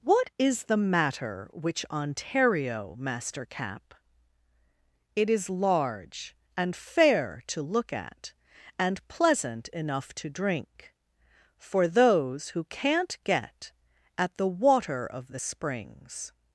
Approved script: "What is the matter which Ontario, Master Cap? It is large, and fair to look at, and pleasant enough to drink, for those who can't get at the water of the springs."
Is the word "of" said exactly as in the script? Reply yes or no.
yes